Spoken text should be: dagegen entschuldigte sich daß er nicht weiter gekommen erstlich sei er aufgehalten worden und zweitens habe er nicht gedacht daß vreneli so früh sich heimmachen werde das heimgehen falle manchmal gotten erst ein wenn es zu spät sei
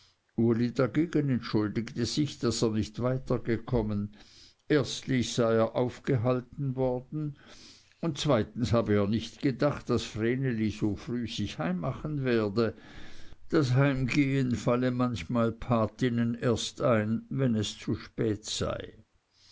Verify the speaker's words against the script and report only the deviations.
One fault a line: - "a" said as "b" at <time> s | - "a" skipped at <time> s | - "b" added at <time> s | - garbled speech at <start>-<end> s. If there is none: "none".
none